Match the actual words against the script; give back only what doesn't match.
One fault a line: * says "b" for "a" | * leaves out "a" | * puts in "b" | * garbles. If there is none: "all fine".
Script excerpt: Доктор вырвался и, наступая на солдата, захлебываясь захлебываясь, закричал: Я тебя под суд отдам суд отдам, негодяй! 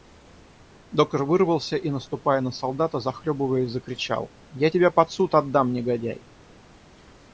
* leaves out "захлебываясь"
* leaves out "суд отдам"